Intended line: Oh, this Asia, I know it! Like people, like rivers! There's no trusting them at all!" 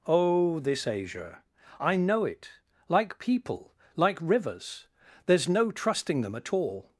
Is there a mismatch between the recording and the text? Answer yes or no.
no